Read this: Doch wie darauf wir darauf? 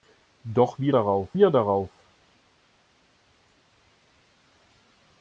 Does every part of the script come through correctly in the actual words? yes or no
yes